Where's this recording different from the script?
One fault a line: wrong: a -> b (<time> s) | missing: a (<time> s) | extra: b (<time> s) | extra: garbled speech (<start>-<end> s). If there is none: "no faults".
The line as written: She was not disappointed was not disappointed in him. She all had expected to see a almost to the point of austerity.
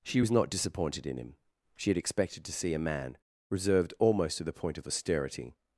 missing: was not disappointed (1.0 s)
missing: all (1.9 s)
extra: man reserved (2.8 s)